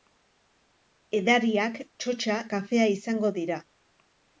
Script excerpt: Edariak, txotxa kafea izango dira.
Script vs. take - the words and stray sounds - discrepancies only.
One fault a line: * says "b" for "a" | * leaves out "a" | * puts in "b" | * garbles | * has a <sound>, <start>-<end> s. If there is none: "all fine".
all fine